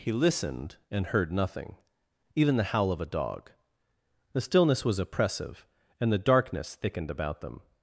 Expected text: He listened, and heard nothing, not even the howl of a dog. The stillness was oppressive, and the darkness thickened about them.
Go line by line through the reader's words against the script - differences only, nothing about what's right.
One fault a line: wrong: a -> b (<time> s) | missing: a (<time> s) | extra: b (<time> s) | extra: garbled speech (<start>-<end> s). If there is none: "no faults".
missing: not (1.7 s)